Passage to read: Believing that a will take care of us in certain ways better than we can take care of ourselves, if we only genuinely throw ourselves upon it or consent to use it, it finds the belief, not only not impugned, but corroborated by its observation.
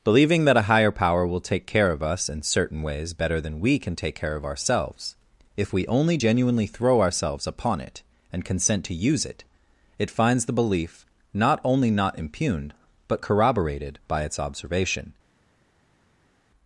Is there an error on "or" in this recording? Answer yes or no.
yes